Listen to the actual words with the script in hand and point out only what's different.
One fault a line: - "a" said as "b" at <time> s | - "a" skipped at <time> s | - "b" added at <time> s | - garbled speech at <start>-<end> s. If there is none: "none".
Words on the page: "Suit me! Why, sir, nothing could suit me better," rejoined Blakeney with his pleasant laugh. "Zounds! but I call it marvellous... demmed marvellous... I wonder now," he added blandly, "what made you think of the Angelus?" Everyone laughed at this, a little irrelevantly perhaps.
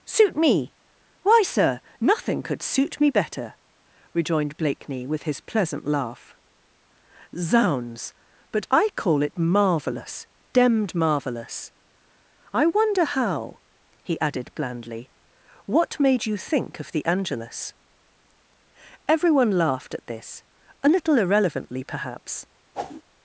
- "now" said as "how" at 13.0 s